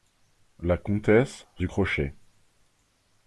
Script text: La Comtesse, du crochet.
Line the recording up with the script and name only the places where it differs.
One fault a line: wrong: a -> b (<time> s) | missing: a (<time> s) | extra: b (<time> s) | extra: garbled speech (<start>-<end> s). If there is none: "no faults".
no faults